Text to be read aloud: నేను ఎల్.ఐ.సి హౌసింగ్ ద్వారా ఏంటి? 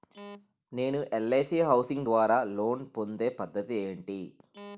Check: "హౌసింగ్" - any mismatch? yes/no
no